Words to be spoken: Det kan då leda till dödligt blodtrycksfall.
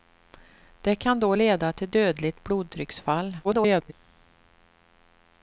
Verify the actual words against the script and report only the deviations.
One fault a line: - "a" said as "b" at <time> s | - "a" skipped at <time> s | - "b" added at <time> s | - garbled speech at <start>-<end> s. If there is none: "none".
- garbled speech at 3.4-3.9 s